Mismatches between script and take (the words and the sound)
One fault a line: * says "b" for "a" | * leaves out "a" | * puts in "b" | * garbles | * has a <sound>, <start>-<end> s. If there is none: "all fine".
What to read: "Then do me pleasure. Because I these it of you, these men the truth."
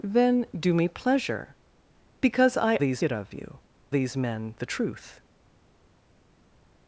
all fine